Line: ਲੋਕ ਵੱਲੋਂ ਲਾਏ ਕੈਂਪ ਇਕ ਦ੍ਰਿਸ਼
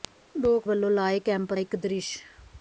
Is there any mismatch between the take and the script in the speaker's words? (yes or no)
no